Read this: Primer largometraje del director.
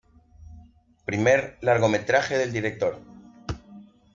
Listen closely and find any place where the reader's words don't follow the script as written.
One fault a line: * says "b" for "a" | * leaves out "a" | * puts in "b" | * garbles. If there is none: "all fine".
all fine